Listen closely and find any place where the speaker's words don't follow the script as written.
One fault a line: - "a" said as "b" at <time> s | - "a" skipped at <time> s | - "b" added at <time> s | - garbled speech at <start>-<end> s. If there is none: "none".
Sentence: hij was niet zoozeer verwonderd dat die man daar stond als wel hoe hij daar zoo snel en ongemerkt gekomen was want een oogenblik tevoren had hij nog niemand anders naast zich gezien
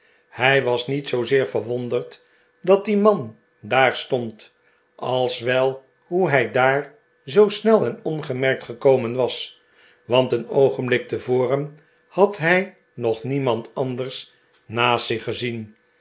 none